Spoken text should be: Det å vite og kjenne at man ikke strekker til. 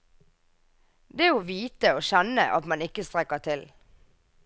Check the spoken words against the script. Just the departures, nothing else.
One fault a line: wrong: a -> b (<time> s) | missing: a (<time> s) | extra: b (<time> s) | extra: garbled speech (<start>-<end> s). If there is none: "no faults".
no faults